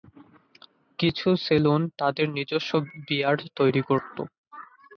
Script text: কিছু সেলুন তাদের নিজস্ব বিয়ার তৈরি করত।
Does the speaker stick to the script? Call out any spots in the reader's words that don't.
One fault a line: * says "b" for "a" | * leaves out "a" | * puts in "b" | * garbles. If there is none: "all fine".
all fine